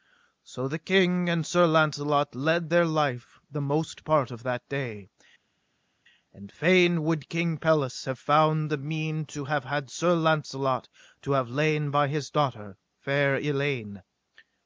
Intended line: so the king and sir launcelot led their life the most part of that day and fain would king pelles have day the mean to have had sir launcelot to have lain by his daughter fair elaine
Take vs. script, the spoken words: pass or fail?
fail